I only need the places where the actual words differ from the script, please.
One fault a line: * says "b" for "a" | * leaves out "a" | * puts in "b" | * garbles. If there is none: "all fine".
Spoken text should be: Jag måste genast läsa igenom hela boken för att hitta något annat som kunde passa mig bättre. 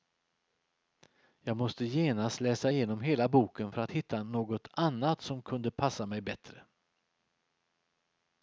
all fine